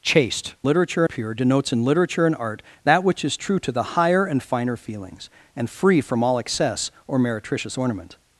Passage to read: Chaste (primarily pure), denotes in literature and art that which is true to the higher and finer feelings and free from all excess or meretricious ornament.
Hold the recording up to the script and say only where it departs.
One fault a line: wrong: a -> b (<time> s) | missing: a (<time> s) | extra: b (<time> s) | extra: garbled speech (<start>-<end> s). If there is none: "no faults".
wrong: primarily -> literature (0.6 s)